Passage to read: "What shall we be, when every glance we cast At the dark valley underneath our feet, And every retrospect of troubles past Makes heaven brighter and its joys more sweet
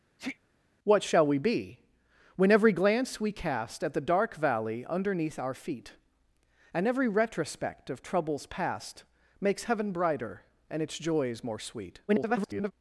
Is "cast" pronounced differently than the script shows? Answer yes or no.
no